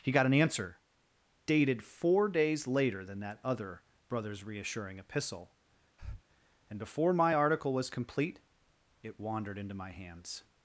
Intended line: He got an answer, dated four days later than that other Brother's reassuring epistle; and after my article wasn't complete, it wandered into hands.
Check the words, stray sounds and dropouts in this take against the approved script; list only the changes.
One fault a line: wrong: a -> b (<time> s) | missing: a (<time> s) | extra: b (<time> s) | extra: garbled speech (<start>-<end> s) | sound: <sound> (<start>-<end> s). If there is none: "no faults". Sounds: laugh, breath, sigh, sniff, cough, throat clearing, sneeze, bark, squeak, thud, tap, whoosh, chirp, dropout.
sound: breath (6.0-6.2 s)
wrong: after -> before (6.8 s)
wrong: wasn't -> was (7.7 s)
extra: my (9.7 s)